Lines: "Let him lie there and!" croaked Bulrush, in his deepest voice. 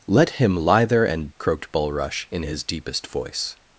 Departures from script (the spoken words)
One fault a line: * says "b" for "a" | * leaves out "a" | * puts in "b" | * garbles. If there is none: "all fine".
all fine